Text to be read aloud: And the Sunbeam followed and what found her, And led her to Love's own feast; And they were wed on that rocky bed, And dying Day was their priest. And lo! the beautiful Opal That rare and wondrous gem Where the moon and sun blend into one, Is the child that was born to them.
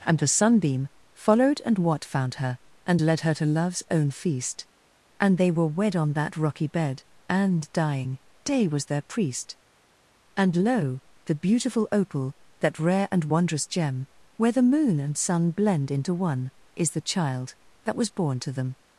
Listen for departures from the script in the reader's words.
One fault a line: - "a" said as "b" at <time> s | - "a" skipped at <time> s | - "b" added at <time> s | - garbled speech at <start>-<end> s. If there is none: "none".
none